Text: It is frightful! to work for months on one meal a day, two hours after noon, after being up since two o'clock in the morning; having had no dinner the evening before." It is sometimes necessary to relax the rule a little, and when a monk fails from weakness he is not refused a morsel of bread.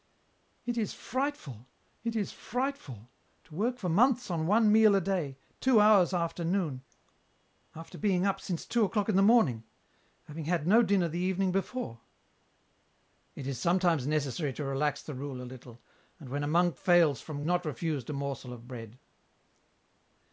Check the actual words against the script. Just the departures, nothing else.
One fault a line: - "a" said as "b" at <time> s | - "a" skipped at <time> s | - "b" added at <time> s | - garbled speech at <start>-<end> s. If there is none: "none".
- "it is frightful" added at 2.0 s
- "weakness he is" skipped at 17.4 s